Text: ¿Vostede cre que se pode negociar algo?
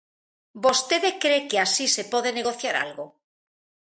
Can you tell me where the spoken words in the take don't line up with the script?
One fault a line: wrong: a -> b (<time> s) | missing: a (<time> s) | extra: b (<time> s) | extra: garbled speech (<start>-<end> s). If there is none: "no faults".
extra: así (1.6 s)